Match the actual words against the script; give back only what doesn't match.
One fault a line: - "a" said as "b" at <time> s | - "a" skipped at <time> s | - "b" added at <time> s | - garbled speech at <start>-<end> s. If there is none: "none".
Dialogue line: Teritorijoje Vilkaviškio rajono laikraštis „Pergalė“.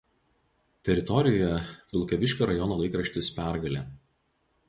none